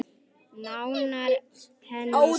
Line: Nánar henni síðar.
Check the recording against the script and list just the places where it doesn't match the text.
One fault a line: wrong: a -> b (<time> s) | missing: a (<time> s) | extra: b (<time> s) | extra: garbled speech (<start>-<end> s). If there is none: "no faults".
no faults